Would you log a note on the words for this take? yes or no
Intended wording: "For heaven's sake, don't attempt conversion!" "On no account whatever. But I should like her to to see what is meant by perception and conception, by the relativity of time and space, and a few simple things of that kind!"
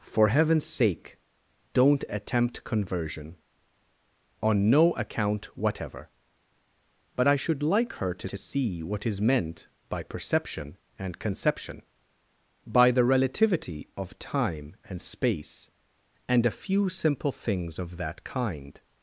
no